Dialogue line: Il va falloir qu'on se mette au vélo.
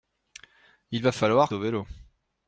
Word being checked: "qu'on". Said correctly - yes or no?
no